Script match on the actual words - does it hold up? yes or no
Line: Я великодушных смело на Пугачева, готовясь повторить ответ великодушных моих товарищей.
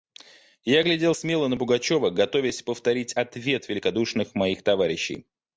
no